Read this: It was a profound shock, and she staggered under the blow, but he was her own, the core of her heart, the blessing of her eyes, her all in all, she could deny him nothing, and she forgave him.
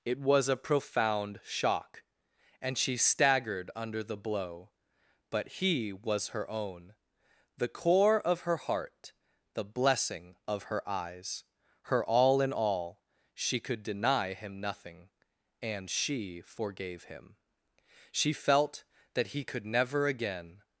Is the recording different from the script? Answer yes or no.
yes